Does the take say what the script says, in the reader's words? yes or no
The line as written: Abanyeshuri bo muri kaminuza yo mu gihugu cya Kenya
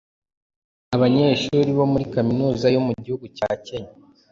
yes